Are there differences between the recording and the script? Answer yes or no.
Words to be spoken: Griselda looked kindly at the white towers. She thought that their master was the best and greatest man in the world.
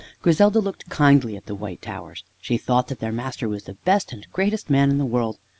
no